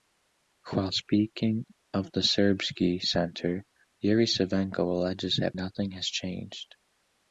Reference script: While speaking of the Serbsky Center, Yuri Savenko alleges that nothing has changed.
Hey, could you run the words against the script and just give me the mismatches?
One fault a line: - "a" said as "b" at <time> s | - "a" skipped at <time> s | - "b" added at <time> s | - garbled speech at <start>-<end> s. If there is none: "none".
none